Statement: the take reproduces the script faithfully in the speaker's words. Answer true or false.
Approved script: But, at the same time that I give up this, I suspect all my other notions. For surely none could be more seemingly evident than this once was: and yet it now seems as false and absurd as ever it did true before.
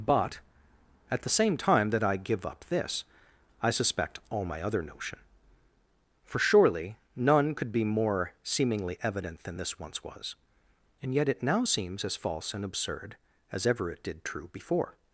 false